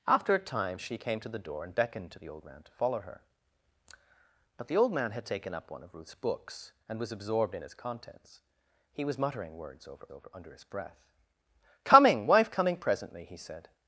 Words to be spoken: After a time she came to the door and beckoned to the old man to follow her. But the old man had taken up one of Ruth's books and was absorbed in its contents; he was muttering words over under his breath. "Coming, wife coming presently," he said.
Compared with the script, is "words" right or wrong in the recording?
right